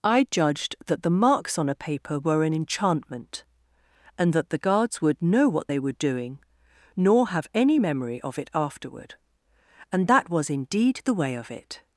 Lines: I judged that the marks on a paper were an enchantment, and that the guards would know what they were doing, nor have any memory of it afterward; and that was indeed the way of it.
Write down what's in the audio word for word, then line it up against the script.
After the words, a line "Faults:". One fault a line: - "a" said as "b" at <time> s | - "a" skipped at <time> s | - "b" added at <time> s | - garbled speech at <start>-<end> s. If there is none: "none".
I judged that the marks on a paper were an enchantment, and that the guards would know what they were doing, nor have any memory of it afterward; and that was indeed the way of it.
Faults:
none